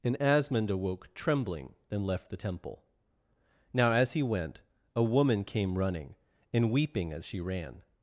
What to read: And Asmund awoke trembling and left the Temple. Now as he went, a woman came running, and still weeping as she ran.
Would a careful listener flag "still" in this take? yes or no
yes